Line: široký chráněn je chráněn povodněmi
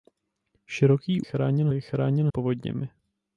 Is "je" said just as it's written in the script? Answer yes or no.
yes